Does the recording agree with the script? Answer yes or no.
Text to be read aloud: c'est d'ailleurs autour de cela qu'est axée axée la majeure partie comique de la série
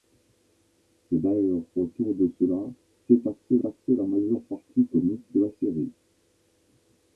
yes